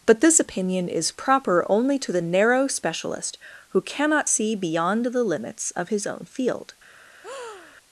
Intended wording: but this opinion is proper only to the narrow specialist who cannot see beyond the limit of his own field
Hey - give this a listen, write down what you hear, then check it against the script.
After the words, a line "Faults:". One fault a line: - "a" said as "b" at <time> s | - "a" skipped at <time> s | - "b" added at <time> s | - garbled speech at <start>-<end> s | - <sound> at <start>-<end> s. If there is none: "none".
but this opinion is proper only to the narrow specialist who cannot see beyond the limits of his own field
Faults:
- "limit" said as "limits" at 5.2 s
- breath at 7.2-7.8 s